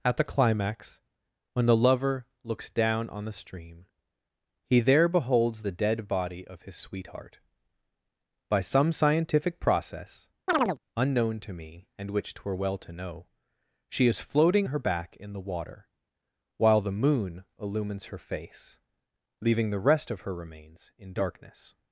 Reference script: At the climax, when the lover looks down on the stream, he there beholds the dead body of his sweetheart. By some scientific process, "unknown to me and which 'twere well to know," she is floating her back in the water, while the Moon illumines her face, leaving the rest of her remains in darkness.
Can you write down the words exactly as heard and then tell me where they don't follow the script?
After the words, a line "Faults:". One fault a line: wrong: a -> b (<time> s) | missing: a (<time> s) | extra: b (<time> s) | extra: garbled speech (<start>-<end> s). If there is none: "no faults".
At the climax, when the lover looks down on the stream, he there beholds the dead body of his sweetheart. By some scientific process, "unknown to me and which 'twere well to know," she is floating her back in the water, while the Moon illumines her face, leaving the rest of her remains in darkness.
Faults:
no faults